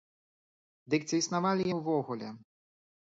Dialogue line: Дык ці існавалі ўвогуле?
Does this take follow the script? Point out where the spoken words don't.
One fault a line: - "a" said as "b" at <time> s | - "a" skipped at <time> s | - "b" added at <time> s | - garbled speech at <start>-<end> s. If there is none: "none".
none